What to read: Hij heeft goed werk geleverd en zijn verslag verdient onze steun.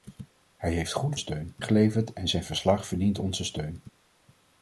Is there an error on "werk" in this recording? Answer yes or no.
yes